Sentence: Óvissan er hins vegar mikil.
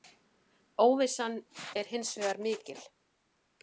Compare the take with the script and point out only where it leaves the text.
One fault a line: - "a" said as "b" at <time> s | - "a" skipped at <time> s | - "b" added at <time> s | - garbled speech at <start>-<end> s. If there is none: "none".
none